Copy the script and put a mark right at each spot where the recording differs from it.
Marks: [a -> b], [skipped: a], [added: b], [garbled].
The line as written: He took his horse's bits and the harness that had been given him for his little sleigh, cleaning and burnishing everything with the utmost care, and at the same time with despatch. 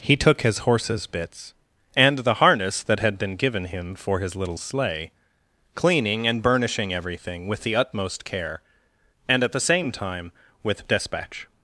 He took his horse's bits and the harness that had been given him for his little sleigh, cleaning and burnishing everything with the utmost care, and at the same time with despatch.